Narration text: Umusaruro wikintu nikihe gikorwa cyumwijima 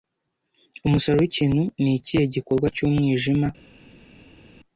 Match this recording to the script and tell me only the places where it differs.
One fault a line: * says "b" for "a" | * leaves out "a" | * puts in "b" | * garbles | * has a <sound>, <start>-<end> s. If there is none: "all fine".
all fine